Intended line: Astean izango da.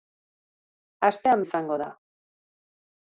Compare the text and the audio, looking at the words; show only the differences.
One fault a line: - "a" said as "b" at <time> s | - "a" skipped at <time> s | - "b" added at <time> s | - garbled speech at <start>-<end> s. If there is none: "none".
none